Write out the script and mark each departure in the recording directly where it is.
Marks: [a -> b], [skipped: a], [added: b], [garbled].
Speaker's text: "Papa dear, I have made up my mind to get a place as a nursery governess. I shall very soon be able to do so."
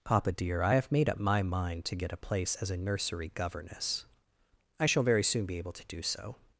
"Papa dear, I have made up my mind to get a place as a nursery governess. I shall very soon be able to do so."